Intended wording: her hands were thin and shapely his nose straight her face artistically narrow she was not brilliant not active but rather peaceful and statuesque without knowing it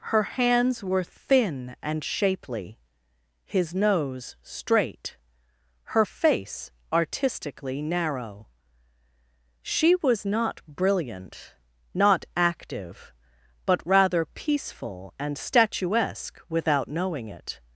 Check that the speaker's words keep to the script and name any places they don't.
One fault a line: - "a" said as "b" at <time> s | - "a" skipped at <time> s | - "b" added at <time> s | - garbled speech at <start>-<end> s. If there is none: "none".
none